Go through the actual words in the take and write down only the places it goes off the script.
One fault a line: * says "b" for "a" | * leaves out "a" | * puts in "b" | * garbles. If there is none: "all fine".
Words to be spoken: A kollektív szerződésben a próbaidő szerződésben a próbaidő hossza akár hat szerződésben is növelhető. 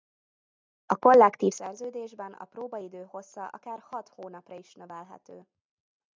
* leaves out "szerződésben a próbaidő"
* says "hónapra" for "szerződésben"